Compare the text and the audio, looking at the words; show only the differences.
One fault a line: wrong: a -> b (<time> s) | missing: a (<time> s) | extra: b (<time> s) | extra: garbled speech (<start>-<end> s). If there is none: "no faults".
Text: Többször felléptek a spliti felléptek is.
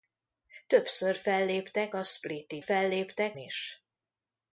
no faults